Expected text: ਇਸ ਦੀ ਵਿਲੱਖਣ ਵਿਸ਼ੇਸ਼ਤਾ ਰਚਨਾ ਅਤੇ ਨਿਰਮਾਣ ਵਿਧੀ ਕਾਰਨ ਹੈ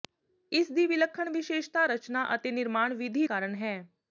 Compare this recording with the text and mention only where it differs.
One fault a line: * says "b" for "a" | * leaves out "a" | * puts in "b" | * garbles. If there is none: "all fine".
all fine